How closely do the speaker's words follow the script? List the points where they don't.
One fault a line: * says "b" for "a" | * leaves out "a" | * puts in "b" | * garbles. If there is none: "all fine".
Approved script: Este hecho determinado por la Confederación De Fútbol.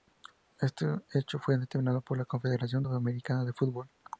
* puts in "fue"
* puts in "Sudamericana"